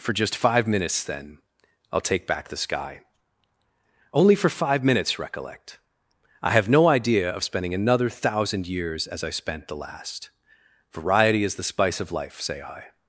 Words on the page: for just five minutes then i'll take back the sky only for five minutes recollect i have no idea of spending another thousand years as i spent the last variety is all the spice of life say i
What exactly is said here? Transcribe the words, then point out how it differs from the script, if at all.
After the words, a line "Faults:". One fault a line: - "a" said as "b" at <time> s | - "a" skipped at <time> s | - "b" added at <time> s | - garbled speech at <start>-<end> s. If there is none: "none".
for just five minutes then i'll take back the sky only for five minutes recollect i have no idea of spending another thousand years as i spent the last variety is the spice of life say i
Faults:
- "all" skipped at 11.5 s